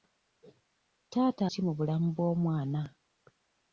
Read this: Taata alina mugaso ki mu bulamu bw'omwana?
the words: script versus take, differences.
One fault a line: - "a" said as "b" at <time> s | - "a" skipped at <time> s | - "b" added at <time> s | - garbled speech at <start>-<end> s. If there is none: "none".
- "alina mugaso" skipped at 1.4 s